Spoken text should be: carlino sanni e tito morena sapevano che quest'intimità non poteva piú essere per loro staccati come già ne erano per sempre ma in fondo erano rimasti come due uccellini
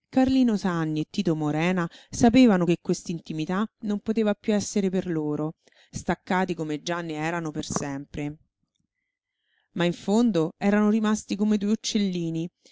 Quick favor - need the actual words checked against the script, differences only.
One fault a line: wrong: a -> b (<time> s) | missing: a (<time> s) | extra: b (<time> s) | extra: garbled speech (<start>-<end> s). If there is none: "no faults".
no faults